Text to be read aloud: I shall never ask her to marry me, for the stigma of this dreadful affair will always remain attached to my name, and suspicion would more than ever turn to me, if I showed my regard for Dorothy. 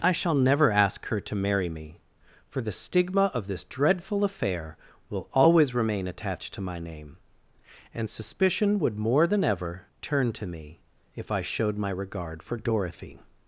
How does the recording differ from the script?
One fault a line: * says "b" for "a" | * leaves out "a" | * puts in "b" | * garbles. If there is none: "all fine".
all fine